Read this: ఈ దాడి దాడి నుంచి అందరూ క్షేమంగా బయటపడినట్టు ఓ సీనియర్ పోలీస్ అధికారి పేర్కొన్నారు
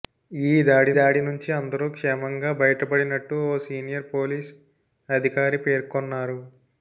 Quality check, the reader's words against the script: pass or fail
pass